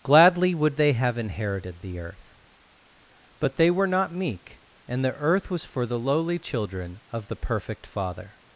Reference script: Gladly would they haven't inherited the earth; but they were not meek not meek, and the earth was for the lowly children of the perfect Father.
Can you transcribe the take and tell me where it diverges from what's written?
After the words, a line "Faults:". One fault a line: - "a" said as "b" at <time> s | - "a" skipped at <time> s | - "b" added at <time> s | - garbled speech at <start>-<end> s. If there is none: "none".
Gladly would they have inherited the earth; but they were not meek, and the earth was for the lowly children of the perfect Father.
Faults:
- "haven't" said as "have" at 0.9 s
- "not meek" skipped at 4.6 s